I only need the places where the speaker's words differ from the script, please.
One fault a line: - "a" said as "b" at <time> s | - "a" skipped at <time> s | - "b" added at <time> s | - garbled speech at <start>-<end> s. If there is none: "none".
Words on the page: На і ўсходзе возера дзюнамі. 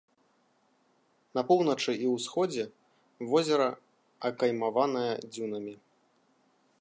- "поўначы" added at 1.5 s
- "акаймаванае" added at 4.3 s